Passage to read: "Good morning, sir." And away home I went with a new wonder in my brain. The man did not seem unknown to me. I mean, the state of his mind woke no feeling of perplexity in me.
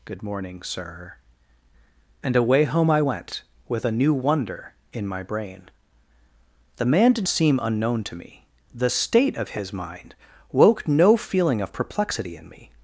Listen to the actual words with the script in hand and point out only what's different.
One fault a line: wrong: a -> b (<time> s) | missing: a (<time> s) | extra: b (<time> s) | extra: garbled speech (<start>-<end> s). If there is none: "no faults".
missing: not (7.3 s)
missing: I mean (8.5 s)